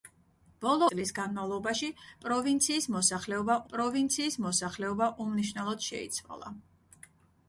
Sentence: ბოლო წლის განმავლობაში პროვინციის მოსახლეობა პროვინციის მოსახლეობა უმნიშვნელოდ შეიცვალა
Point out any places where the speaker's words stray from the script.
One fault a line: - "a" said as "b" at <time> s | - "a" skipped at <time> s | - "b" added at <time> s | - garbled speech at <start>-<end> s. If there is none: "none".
none